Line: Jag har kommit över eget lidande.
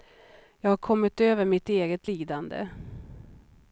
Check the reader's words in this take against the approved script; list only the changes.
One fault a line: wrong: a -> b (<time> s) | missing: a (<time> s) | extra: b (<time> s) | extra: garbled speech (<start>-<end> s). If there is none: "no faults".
extra: mitt (1.4 s)